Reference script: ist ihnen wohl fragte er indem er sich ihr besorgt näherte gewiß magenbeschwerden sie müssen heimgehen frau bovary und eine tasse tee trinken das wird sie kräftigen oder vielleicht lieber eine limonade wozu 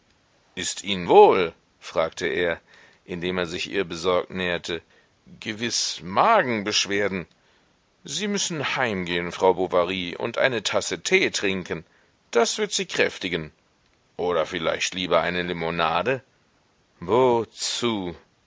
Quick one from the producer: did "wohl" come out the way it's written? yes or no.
yes